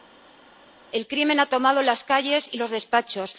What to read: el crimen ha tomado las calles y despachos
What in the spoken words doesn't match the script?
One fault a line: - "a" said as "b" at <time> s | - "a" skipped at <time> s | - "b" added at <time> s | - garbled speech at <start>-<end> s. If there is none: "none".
- "los" added at 2.6 s